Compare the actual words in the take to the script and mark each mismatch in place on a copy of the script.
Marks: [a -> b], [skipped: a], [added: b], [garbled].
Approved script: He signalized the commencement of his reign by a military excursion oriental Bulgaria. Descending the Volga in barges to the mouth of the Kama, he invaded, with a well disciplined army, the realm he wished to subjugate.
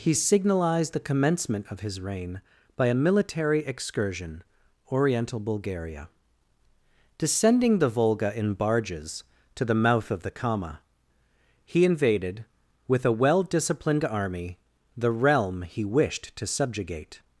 He signalized the commencement of his reign by a military excursion oriental Bulgaria. Descending the Volga in barges to the mouth of the Kama, he invaded, with a well disciplined army, the realm he wished to subjugate.